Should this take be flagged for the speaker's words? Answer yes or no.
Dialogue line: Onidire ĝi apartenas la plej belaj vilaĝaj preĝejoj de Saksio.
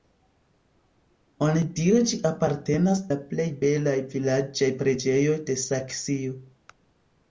no